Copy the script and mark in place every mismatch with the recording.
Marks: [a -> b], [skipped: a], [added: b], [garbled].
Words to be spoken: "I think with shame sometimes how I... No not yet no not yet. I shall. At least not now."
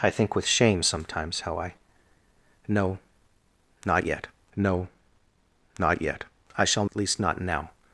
"I think with shame sometimes how I... No not yet no not yet. I shall. At least not now."